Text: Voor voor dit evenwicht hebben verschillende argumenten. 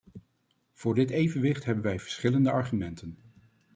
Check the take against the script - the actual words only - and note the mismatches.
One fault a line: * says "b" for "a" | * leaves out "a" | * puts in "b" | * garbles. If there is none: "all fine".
* leaves out "voor"
* puts in "wij"